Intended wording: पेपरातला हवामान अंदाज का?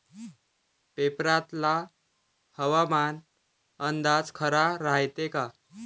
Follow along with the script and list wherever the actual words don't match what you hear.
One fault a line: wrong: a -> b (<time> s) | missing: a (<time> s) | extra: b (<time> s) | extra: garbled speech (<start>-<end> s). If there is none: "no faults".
extra: खरा रायते (4.3 s)